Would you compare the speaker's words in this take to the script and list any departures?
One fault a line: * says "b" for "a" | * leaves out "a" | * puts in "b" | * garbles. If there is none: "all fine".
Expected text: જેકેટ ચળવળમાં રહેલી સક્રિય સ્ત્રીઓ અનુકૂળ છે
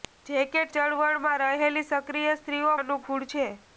all fine